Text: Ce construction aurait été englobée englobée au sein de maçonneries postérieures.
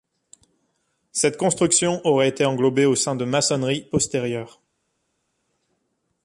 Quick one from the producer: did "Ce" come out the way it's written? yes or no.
no